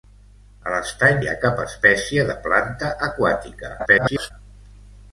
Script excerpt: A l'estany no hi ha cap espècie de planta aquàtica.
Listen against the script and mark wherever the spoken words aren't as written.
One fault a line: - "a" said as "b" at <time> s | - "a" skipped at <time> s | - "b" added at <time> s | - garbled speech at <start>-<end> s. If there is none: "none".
- "no" skipped at 1.2 s
- garbled speech at 3.8-4.3 s